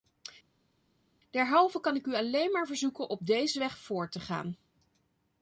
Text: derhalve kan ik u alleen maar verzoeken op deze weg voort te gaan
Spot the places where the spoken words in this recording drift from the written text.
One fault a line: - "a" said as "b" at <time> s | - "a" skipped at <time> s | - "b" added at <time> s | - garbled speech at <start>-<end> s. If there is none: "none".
none